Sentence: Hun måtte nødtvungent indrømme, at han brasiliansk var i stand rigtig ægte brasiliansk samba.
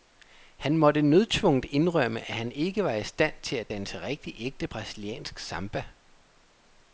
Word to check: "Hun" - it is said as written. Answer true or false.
false